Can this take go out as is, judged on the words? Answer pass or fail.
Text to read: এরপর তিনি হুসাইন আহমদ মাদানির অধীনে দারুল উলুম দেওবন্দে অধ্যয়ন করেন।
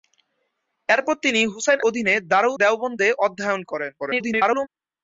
fail